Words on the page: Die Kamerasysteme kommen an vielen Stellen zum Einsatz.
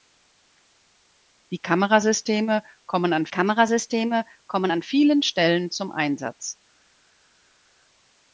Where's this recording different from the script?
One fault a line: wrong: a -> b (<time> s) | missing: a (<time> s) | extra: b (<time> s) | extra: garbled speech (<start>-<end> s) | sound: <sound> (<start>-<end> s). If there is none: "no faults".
extra: Kamerasysteme kommen an (3.3 s)